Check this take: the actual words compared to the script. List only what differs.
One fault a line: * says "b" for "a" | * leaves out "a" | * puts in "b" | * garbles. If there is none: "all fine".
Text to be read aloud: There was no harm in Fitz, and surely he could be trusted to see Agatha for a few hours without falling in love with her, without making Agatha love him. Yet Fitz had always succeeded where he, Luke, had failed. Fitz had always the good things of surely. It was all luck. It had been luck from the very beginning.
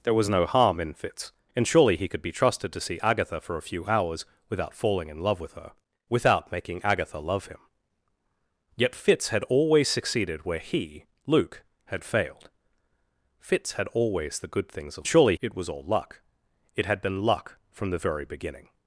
all fine